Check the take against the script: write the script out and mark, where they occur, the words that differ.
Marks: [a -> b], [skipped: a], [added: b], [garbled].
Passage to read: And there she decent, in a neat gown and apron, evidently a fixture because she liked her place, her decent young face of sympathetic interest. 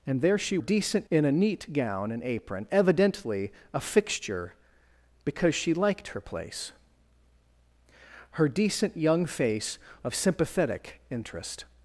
And there she decent, in a neat gown and apron, evidently a fixture because she liked her place, her decent young face of sympathetic interest.